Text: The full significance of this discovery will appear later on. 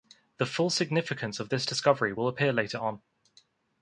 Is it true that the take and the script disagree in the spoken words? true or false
false